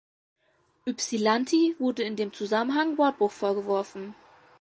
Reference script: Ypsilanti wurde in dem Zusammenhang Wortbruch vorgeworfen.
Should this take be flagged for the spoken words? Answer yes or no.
no